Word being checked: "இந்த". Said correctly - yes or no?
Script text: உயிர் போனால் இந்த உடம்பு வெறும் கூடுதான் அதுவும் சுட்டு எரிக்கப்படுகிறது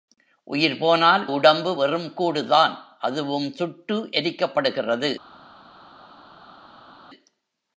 no